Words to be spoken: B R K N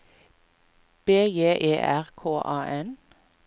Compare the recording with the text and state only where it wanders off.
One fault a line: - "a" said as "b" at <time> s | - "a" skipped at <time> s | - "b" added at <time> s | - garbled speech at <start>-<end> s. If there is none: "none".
- "J E" added at 1.3 s
- "A" added at 2.4 s